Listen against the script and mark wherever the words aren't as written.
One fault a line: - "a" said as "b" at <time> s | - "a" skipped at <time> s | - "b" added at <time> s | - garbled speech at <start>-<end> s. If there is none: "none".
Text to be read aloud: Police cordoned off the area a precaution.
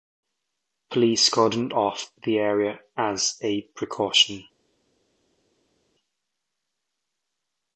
- "as" added at 3.0 s